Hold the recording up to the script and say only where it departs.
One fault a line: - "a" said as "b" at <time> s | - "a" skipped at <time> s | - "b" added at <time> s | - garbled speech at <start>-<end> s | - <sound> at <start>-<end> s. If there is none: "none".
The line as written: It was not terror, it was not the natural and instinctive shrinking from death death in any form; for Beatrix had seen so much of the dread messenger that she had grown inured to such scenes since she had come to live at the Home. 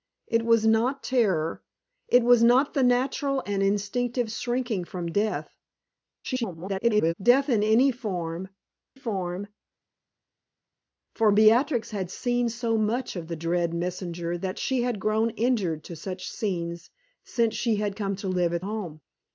- garbled speech at 6.2-7.1 s
- "form" added at 8.9 s
- "the" skipped at 18.6 s